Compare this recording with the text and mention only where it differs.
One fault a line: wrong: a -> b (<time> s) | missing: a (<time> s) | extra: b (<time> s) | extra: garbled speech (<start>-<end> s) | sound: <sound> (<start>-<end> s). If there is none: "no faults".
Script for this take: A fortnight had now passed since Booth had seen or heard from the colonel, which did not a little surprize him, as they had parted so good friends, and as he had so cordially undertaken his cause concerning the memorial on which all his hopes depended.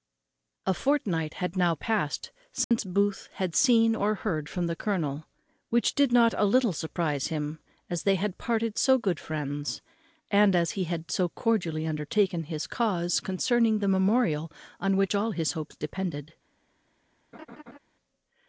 sound: dropout (2.6-2.7 s)
sound: laugh (17.3-17.8 s)